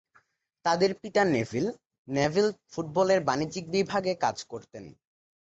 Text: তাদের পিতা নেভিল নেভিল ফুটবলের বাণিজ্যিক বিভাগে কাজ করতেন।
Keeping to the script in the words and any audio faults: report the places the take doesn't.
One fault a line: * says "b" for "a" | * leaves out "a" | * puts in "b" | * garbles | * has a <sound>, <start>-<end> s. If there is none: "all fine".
all fine